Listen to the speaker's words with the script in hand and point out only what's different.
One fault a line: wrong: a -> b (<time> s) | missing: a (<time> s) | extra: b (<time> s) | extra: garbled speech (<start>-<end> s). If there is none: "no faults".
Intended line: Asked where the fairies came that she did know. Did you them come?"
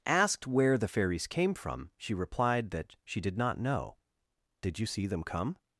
extra: from she replied (1.5 s)
extra: not (3.4 s)
extra: see (4.8 s)